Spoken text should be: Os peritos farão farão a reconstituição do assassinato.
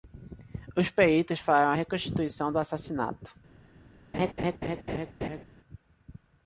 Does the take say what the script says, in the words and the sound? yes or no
no